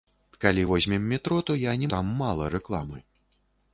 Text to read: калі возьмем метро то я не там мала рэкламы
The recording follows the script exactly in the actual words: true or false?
true